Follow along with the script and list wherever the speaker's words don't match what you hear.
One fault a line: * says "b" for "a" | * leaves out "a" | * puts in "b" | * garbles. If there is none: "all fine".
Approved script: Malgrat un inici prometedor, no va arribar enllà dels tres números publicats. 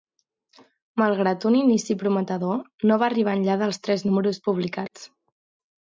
all fine